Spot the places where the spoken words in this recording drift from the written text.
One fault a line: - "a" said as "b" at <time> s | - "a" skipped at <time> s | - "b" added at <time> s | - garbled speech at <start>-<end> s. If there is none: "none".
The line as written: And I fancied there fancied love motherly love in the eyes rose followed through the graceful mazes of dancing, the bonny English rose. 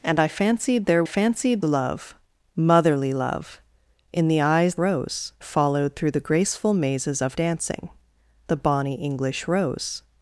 none